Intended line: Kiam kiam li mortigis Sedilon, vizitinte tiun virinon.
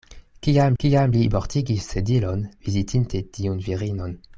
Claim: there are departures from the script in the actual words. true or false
false